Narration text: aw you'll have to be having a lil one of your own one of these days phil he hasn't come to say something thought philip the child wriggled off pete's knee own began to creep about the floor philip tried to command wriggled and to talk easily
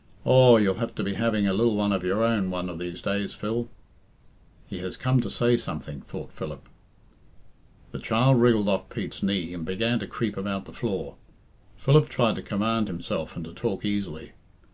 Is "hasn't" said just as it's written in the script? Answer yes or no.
no